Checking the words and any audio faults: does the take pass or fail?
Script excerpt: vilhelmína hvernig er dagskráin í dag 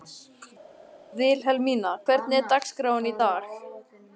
pass